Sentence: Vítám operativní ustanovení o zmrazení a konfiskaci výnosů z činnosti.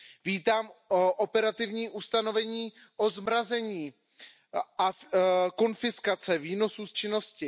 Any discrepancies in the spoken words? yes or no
no